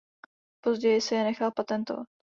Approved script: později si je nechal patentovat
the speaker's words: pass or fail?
pass